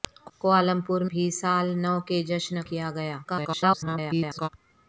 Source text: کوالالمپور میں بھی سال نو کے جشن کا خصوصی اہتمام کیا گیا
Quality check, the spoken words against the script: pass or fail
fail